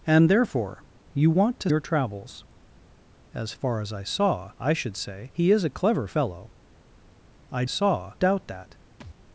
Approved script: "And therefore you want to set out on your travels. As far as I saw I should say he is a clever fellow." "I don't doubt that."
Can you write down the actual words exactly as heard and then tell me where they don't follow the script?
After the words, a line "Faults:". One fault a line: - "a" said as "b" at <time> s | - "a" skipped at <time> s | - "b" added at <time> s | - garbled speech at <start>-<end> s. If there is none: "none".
"And therefore you want to your travels. As far as I saw I should say he is a clever fellow." "I saw doubt that."
Faults:
- "set out on" skipped at 1.7 s
- "don't" said as "saw" at 7.7 s